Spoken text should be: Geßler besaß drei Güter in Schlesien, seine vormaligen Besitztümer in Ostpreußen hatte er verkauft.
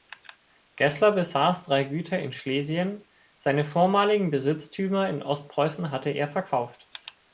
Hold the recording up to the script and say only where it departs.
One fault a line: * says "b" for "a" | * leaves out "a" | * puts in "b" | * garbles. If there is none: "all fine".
all fine